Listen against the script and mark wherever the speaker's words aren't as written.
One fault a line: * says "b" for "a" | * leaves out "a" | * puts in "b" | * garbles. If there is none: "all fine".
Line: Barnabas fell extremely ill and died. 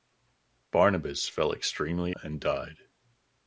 * leaves out "ill"